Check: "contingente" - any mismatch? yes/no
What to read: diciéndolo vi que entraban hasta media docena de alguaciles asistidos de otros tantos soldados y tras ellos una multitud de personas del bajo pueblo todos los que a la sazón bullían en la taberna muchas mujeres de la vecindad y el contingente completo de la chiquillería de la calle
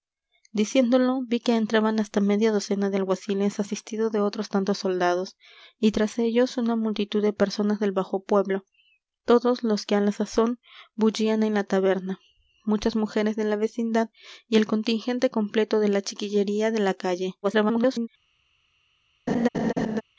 no